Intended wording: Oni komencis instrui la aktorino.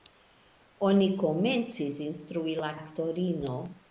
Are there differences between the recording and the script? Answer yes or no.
no